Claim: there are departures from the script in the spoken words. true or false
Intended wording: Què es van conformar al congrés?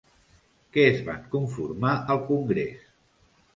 false